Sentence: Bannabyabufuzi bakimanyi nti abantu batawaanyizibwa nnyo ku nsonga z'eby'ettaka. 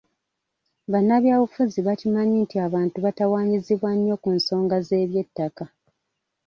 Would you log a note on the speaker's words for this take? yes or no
no